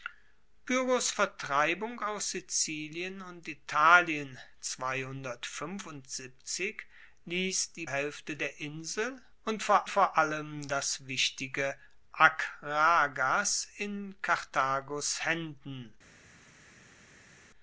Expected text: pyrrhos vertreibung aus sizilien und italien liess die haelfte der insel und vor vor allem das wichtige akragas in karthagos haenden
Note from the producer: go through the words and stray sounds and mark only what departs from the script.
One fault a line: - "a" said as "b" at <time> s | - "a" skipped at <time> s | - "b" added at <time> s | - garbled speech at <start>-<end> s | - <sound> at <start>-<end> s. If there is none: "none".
none